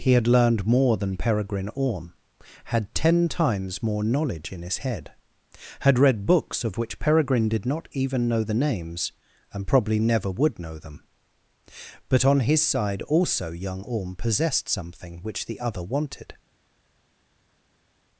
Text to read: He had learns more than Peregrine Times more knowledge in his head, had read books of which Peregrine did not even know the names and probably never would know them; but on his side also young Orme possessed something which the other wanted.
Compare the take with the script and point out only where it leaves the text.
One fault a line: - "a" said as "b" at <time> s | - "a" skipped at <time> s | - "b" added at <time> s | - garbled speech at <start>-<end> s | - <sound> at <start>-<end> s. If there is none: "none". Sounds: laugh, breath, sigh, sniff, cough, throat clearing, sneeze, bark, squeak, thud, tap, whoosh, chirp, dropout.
- "learns" said as "learned" at 0.2 s
- "Orme had ten" added at 1.8 s